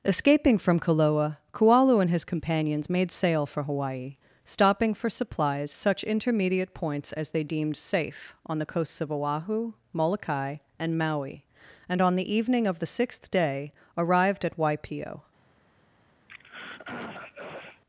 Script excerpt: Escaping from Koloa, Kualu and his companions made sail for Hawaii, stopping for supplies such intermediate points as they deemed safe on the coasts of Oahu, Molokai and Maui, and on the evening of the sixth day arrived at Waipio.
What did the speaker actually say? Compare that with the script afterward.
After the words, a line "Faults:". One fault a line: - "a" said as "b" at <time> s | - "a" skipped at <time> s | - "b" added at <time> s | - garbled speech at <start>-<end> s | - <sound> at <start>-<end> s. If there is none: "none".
Escaping from Koloa, Kualu and his companions made sail for Hawaii, stopping for supplies such intermediate points as they deemed safe on the coasts of Oahu, Molokai and Maui, and on the evening of the sixth day arrived at Waipio.
Faults:
- throat clearing at 16.3-17.8 s